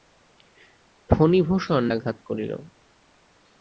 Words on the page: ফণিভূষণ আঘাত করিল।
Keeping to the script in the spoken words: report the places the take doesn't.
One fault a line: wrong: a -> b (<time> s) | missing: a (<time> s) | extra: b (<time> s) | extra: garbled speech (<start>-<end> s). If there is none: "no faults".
no faults